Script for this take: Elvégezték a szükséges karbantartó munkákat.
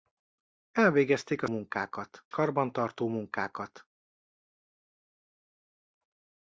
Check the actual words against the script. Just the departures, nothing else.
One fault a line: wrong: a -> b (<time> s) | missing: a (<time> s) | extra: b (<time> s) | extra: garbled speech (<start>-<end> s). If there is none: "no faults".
wrong: szükséges -> munkákat (1.5 s)